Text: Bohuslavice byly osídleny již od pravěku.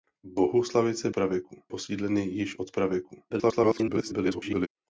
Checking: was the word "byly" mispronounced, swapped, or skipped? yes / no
yes